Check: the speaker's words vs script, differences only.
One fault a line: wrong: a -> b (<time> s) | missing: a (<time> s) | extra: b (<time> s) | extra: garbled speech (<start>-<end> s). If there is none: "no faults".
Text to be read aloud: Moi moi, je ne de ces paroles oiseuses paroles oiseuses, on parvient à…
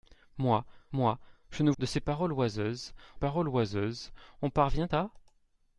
no faults